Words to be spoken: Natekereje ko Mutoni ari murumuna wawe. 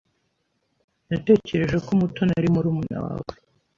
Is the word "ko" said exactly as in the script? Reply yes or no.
yes